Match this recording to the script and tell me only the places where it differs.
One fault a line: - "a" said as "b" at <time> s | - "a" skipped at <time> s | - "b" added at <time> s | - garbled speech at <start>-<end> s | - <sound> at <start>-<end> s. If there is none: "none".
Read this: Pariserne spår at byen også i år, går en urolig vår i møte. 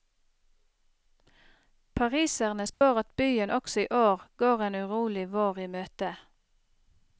- dropout at 2.7-2.8 s